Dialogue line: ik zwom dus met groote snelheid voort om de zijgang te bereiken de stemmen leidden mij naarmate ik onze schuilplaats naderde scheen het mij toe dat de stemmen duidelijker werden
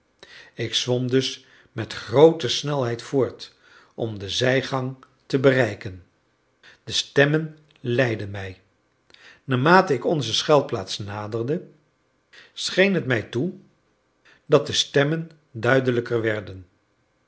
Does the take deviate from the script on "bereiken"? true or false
false